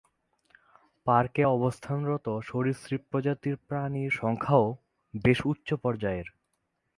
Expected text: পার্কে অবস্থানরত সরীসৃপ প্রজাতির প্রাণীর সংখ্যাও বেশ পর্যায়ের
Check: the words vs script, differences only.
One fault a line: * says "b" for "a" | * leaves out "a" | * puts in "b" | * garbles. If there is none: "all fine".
* puts in "উচ্চ"